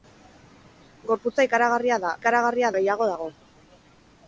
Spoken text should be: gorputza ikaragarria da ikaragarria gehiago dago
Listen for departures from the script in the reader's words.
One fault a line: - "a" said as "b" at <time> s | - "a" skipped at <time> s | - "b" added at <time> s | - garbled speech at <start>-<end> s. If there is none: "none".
none